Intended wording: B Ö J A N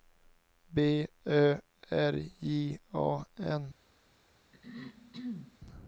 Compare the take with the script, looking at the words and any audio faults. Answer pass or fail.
fail